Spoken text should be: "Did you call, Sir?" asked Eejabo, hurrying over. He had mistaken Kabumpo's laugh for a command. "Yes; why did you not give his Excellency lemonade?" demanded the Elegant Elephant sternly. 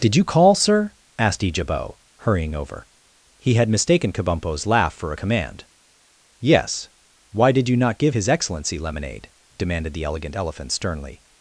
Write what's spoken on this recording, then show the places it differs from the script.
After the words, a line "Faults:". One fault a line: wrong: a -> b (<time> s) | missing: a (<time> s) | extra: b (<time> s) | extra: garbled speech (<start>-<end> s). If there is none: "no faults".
"Did you call, Sir?" asked Eejabo, hurrying over. He had mistaken Kabumpo's laugh for a command. "Yes; why did you not give his Excellency lemonade?" demanded the Elegant Elephant sternly.
Faults:
no faults